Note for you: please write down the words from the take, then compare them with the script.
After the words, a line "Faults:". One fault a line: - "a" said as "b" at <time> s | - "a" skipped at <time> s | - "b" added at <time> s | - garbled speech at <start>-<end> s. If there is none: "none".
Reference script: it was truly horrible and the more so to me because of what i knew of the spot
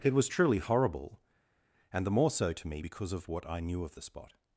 it was truly horrible and the more so to me because of what i knew of the spot
Faults:
none